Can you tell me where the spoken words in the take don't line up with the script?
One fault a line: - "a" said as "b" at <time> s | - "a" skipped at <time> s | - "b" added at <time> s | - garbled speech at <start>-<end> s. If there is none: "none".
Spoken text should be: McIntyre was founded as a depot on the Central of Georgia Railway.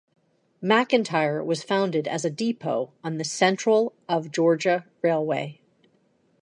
none